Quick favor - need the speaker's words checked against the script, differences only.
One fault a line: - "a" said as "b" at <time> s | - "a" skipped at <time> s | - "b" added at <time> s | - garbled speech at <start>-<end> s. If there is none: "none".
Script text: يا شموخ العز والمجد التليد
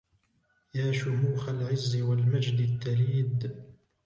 none